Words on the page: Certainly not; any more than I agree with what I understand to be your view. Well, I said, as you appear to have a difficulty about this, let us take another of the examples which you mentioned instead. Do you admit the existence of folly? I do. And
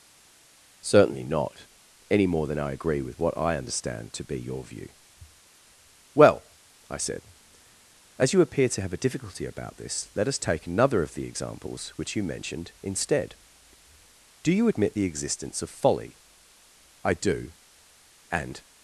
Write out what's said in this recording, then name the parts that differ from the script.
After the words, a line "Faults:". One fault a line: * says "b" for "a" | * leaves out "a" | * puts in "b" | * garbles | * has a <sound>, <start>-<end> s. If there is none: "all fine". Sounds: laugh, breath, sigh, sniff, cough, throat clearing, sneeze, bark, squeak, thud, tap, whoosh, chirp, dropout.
Certainly not; any more than I agree with what I understand to be your view. Well, I said, as you appear to have a difficulty about this, let us take another of the examples which you mentioned instead. Do you admit the existence of folly? I do. And
Faults:
all fine